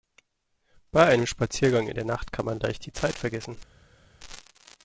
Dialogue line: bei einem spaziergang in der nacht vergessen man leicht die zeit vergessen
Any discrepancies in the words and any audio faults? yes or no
yes